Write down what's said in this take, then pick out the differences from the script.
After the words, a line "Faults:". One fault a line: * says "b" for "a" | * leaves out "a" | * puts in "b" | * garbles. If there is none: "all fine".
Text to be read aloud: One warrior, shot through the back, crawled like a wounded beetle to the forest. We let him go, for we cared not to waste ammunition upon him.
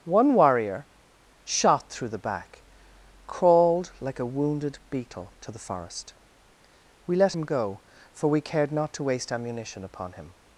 One warrior, shot through the back, crawled like a wounded beetle to the forest. We let him go, for we cared not to waste ammunition upon him.
Faults:
all fine